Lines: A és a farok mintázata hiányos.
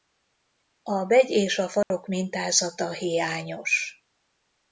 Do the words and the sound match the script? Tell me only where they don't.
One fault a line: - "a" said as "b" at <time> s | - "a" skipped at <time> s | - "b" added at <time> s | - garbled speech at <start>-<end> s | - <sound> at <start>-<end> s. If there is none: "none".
- "begy" added at 1.1 s
- dropout at 1.8-1.9 s